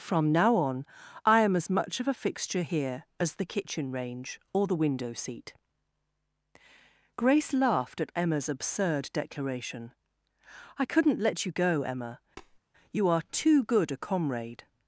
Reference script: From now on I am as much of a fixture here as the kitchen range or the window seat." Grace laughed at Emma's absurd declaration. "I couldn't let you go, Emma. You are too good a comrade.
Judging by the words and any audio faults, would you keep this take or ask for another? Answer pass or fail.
fail